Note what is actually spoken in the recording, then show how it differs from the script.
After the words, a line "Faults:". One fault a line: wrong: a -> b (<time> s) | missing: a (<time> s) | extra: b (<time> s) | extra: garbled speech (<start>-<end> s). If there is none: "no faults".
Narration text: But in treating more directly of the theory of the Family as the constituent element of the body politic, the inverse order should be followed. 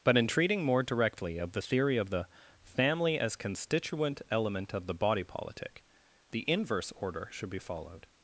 But in treating more directly of the theory of the Family as constituent element of the body politic, the inverse order should be followed.
Faults:
missing: the (3.4 s)